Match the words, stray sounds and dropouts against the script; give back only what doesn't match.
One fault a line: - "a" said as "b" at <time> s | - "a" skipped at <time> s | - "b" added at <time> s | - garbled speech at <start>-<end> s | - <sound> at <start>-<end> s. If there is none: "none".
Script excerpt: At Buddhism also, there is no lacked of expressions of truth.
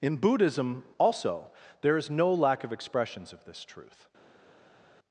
- "At" said as "In" at 0.0 s
- "lacked" said as "lack" at 2.3 s
- "this" added at 3.5 s